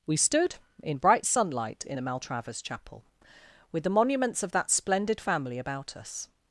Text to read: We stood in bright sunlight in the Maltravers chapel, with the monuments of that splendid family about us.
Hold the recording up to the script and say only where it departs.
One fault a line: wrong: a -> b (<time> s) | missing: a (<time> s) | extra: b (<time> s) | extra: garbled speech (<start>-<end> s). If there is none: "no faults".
no faults